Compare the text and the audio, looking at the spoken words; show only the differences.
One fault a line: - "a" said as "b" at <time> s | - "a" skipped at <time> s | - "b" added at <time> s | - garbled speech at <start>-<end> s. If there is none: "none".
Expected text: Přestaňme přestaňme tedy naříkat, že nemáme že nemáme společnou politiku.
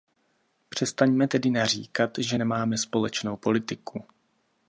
- "přestaňme" skipped at 1.3 s
- "že nemáme" skipped at 2.8 s